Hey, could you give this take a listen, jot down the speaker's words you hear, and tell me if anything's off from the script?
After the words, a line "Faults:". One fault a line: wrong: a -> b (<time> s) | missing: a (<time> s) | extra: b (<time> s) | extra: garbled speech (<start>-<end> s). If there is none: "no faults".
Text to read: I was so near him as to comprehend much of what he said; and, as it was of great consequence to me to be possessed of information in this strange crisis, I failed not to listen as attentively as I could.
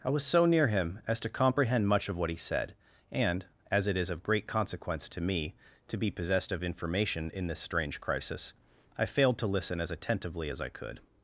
I was so near him as to comprehend much of what he said; and, as it is of great consequence to me to be possessed of information in this strange crisis, I failed to listen as attentively as I could.
Faults:
wrong: was -> is (4.0 s)
missing: not (9.4 s)